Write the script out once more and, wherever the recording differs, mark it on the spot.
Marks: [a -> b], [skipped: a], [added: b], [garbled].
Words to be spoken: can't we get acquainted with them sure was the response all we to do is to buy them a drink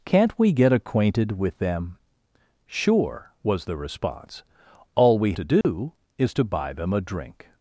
can't we get acquainted with them sure was the response all we to do is to buy them a drink